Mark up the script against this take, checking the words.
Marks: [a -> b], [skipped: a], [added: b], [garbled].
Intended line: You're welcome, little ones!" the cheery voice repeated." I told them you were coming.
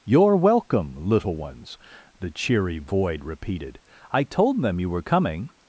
You're welcome, little ones!" the cheery [voice -> void] repeated." I told them you were coming.